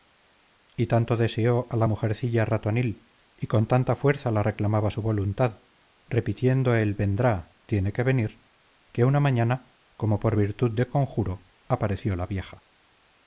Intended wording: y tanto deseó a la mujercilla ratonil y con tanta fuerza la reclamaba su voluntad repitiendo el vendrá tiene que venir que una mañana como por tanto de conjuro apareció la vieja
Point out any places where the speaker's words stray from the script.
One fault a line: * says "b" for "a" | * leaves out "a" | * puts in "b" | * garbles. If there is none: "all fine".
* says "virtud" for "tanto"